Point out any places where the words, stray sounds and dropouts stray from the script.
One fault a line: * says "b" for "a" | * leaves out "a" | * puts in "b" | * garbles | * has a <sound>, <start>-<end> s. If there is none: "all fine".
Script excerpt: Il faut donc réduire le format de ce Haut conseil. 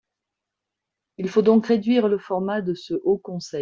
all fine